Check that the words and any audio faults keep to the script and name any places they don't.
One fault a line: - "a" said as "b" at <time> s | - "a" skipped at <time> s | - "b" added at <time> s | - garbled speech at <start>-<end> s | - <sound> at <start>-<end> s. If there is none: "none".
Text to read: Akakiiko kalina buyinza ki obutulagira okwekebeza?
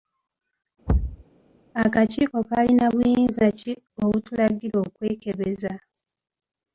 - thud at 0.9-1.2 s